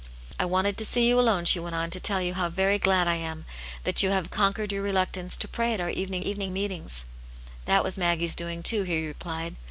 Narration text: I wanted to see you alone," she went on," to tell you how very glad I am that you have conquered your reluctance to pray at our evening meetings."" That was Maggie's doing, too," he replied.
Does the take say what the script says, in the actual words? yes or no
no